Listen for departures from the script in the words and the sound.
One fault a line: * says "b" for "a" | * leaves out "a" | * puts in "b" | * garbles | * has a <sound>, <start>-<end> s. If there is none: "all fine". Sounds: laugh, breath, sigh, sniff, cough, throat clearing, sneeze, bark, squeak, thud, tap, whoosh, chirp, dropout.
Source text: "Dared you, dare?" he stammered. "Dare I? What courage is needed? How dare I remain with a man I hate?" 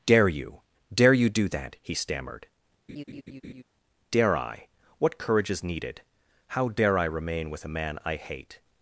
* says "Dare" for "Dared"
* puts in "you do that"
* has a laugh, 2.9-3.6 s